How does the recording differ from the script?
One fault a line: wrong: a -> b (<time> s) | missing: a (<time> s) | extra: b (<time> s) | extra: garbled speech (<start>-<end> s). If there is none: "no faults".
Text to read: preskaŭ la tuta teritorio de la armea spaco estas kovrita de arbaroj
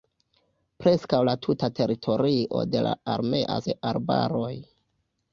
missing: spaco estas kovrita (3.6 s)